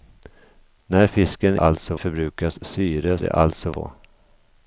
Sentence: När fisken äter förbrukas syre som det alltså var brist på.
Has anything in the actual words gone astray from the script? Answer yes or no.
yes